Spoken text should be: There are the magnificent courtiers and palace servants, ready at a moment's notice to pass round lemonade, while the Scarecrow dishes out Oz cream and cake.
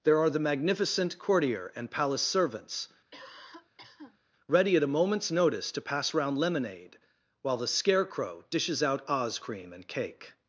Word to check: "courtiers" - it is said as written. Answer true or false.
false